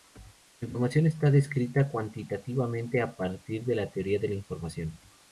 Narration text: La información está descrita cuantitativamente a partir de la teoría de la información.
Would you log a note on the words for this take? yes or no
no